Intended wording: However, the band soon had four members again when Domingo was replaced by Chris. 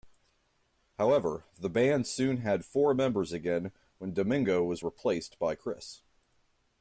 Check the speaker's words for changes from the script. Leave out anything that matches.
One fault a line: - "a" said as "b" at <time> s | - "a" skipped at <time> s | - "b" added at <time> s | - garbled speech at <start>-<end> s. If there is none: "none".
none